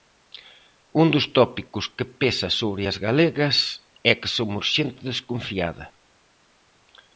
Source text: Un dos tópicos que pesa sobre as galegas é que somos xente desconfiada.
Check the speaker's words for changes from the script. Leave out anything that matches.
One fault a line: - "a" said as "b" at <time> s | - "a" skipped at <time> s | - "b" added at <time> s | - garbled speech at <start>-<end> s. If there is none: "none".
none